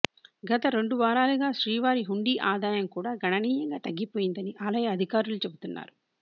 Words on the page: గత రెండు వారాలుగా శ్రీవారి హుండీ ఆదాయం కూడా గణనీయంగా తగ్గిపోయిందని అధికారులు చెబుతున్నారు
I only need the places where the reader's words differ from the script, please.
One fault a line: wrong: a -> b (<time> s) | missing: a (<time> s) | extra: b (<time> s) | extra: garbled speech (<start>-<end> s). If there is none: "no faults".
extra: ఆలయ (4.7 s)